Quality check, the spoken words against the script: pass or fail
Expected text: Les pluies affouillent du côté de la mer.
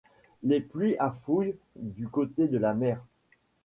pass